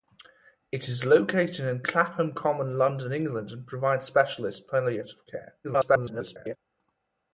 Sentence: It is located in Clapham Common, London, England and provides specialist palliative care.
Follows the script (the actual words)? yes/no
no